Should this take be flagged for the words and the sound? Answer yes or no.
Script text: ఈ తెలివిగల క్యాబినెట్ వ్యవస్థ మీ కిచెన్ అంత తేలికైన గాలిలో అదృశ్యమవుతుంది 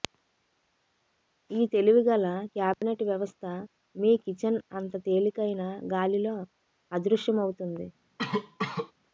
yes